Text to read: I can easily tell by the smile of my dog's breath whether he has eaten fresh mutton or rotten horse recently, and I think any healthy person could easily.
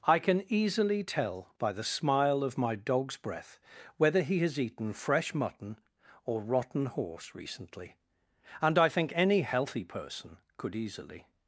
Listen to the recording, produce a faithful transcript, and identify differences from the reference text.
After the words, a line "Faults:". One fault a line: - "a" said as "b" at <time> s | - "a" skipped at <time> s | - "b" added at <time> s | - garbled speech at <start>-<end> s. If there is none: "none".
I can easily tell by the smile of my dog's breath whether he has eaten fresh mutton or rotten horse recently, and I think any healthy person could easily.
Faults:
none